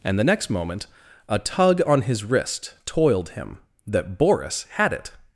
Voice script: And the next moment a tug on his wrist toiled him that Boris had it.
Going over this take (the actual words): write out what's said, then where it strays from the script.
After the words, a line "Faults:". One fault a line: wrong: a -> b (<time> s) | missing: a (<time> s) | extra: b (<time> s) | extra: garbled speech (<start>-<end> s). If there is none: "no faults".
And the next moment a tug on his wrist toiled him that Boris had it.
Faults:
no faults